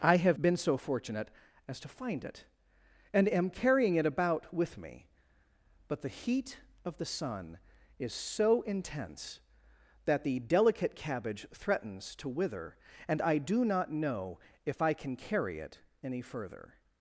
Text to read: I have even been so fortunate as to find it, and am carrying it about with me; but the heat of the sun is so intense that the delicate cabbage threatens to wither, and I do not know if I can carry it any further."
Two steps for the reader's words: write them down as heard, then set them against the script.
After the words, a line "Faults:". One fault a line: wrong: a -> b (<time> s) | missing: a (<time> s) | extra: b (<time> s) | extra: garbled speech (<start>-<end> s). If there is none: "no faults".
I have been so fortunate as to find it, and am carrying it about with me; but the heat of the sun is so intense that the delicate cabbage threatens to wither, and I do not know if I can carry it any further."
Faults:
missing: even (0.4 s)